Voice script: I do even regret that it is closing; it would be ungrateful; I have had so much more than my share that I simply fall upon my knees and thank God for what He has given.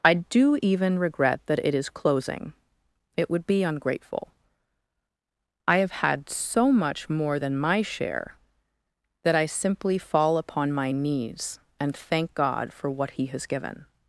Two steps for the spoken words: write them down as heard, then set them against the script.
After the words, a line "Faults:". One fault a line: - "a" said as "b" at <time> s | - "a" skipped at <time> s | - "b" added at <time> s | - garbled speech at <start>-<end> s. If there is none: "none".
I do even regret that it is closing; it would be ungrateful; I have had so much more than my share that I simply fall upon my knees and thank God for what He has given.
Faults:
none